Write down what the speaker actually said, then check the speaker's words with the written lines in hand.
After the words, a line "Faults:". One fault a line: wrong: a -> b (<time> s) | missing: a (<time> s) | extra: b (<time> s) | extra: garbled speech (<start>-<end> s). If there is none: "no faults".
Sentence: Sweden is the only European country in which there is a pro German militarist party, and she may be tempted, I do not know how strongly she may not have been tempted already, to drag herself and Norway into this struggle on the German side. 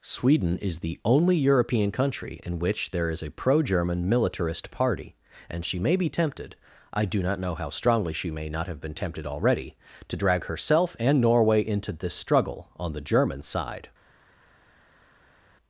Sweden is the only European country in which there is a pro German militarist party, and she may be tempted, I do not know how strongly she may not have been tempted already, to drag herself and Norway into this struggle on the German side.
Faults:
no faults